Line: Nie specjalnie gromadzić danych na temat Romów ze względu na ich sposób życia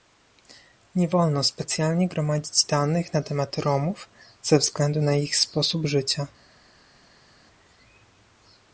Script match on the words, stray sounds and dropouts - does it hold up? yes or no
no